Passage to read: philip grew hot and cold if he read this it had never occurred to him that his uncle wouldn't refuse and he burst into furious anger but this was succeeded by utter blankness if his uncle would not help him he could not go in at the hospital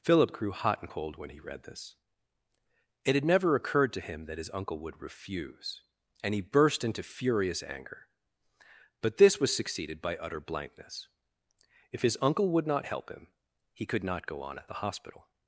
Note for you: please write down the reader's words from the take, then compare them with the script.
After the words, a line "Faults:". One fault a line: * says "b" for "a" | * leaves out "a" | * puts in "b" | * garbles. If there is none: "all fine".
philip grew hot and cold when he read this it had never occurred to him that his uncle would refuse and he burst into furious anger but this was succeeded by utter blankness if his uncle would not help him he could not go on at the hospital
Faults:
* says "when" for "if"
* says "would" for "wouldn't"
* says "on" for "in"